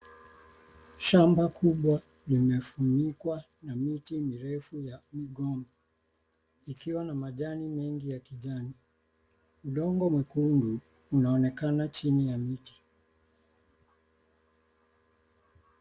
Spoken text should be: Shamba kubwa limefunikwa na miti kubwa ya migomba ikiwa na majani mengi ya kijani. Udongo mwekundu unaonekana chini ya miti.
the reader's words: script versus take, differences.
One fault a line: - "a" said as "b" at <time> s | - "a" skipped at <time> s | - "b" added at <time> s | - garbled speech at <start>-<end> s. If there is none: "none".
- "kubwa" said as "mirefu" at 4.2 s